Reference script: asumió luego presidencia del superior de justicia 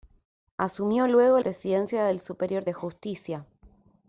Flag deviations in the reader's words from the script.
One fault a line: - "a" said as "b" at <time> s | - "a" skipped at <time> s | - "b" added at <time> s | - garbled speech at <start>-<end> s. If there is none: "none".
none